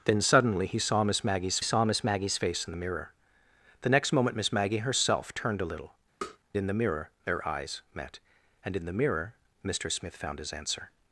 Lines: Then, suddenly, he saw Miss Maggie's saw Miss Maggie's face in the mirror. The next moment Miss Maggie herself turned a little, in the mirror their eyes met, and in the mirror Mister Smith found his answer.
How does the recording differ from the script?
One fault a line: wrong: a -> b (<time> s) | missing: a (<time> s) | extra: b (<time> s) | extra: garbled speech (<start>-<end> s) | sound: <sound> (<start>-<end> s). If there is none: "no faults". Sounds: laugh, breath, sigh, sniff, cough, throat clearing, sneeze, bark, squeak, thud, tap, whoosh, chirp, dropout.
sound: tap (6.2-6.4 s)